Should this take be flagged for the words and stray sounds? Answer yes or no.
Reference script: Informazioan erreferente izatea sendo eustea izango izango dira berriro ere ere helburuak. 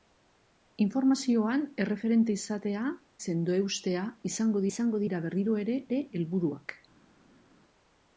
no